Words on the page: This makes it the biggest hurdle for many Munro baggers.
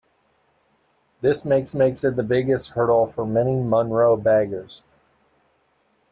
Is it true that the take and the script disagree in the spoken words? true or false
true